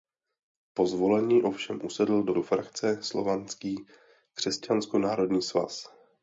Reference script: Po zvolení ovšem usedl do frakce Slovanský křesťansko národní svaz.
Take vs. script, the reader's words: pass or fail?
fail